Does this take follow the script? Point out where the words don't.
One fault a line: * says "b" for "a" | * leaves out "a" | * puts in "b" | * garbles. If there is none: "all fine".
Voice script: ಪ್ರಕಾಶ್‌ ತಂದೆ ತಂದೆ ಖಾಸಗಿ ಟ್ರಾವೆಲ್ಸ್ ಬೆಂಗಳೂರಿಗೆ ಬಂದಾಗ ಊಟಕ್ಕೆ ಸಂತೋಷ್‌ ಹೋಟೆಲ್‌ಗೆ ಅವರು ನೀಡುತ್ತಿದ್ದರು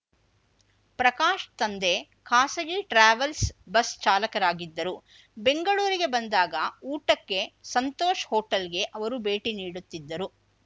* leaves out "ತಂದೆ"
* puts in "ಬಸ್ ಚಾಲಕರಾಗಿದ್ದರು"
* puts in "ಭೇಟಿ"